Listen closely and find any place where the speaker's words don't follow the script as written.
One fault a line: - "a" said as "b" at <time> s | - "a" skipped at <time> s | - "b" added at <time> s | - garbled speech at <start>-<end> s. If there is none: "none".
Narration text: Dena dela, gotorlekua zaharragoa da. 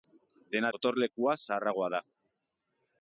- "dela" skipped at 0.7 s